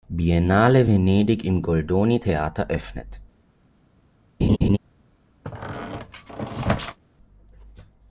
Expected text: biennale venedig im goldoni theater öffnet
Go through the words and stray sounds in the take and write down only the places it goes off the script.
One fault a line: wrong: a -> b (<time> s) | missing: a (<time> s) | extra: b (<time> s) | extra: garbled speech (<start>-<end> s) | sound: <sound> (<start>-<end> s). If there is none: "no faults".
sound: laugh (4.4-4.8 s)
sound: squeak (5.4-7.0 s)